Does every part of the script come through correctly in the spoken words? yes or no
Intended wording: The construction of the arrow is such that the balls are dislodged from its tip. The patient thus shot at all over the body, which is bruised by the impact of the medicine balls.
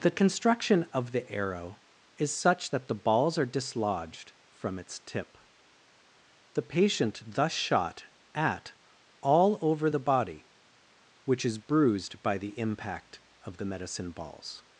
yes